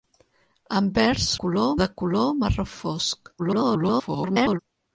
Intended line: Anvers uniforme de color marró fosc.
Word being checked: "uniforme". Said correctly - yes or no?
no